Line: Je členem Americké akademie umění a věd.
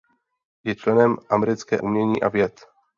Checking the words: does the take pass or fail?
fail